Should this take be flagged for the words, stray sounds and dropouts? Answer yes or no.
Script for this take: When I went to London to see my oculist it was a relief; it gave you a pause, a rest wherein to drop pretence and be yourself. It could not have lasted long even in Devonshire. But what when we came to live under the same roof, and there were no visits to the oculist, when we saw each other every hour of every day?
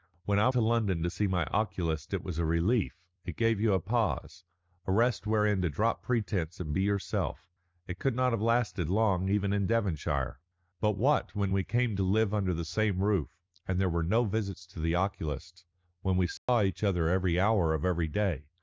yes